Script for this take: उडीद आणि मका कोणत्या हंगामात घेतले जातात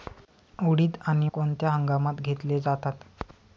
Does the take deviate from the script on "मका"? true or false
true